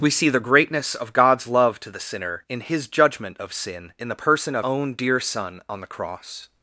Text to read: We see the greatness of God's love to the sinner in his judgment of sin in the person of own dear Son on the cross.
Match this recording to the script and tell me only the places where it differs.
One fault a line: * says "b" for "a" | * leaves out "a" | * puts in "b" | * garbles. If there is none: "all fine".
all fine